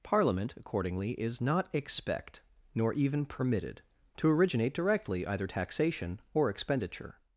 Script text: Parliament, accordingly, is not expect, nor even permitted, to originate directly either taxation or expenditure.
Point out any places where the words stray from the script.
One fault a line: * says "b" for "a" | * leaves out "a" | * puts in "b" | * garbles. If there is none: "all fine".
all fine